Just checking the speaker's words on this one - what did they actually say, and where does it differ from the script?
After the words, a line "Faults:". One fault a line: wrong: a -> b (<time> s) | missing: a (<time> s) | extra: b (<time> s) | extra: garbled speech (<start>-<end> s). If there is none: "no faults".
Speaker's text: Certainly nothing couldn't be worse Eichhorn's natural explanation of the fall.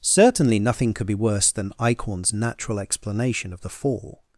Certainly nothing could be worse than Eichhorn's natural explanation of the fall.
Faults:
wrong: couldn't -> could (0.9 s)
extra: than (1.5 s)